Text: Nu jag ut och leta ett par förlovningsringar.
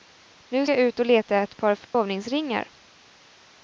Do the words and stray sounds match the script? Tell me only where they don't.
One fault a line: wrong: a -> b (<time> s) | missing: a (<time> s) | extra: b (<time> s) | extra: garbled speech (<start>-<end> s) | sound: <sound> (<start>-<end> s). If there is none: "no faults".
sound: dropout (1.8-1.9 s)